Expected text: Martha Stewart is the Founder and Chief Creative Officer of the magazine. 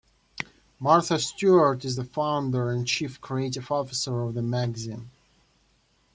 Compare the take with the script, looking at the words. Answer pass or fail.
pass